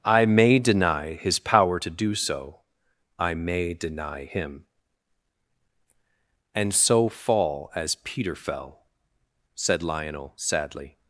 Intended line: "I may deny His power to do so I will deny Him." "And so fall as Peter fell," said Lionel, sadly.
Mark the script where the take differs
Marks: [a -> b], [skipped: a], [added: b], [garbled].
"I may deny His power to do so I [will -> may] deny Him." "And so fall as Peter fell," said Lionel, sadly.